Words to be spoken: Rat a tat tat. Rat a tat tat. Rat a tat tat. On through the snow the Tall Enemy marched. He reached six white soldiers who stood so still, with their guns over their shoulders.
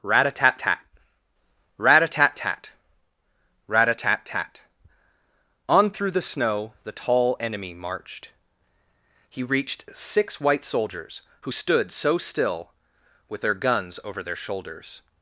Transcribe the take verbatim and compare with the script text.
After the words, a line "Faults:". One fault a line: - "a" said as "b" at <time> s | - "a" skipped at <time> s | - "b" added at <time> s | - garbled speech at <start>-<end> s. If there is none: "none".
Rat a tat tat. Rat a tat tat. Rat a tat tat. On through the snow the Tall Enemy marched. He reached six white soldiers who stood so still, with their guns over their shoulders.
Faults:
none